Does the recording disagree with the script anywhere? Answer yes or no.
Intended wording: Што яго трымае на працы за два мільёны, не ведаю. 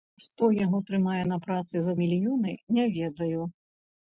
yes